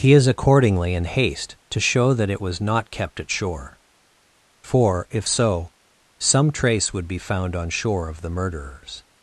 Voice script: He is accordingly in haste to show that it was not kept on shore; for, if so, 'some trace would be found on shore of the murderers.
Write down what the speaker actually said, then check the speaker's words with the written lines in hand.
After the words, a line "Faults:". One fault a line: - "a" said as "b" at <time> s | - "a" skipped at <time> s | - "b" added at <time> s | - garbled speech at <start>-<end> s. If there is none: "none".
He is accordingly in haste to show that it was not kept at shore; for, if so, 'some trace would be found on shore of the murderers.
Faults:
- "on" said as "at" at 3.2 s